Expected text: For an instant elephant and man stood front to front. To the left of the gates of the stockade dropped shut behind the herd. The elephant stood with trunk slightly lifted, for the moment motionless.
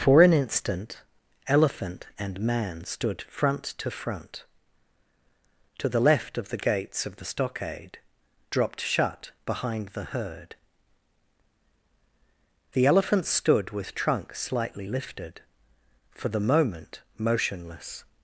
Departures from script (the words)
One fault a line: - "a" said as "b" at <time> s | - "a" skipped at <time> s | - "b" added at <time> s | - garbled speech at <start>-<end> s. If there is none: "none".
none